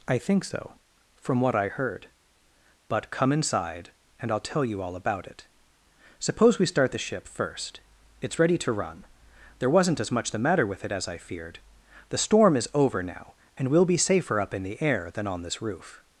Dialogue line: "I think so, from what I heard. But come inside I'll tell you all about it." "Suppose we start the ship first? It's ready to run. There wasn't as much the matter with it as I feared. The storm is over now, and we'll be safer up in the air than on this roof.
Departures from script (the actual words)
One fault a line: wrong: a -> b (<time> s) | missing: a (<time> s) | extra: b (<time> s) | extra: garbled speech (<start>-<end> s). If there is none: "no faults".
extra: and (4.2 s)